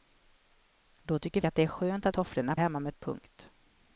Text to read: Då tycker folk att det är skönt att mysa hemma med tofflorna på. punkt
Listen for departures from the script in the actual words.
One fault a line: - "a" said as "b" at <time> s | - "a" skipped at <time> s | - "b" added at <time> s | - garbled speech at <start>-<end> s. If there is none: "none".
- "folk" skipped at 1.4 s
- "mysa" said as "tofflorna" at 2.1 s
- "tofflorna på" skipped at 2.9 s